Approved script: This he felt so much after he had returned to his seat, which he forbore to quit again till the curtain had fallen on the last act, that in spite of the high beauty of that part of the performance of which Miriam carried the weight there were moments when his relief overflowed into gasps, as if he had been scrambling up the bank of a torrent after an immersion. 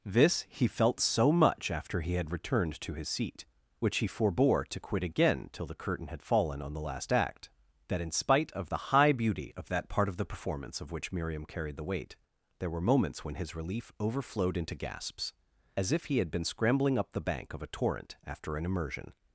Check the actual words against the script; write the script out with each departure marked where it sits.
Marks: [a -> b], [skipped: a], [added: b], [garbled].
This he felt so much after he had returned to his seat, which he forbore to quit again till the curtain had fallen on the last act, that in spite of the high beauty of that part of the performance of which Miriam carried the weight there were moments when his relief overflowed into gasps, as if he had been scrambling up the bank of a torrent after an immersion.